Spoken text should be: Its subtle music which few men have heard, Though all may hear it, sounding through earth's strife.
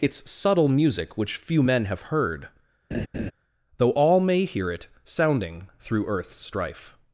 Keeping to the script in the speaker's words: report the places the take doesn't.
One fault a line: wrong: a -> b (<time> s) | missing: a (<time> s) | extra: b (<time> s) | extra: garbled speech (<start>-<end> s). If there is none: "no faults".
no faults